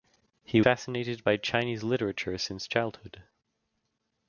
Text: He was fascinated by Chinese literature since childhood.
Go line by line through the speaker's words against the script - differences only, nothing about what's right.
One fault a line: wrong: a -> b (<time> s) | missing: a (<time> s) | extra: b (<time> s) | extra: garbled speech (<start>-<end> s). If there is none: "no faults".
missing: was (0.6 s)